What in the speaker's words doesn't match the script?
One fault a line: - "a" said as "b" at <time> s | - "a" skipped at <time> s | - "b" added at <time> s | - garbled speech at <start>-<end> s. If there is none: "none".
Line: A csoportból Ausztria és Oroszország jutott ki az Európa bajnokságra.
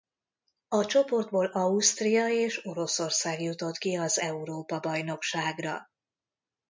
none